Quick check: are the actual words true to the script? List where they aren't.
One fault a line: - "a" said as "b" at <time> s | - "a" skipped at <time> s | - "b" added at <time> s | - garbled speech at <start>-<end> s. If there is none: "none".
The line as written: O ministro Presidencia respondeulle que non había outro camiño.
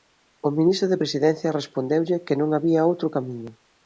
- "de" added at 0.9 s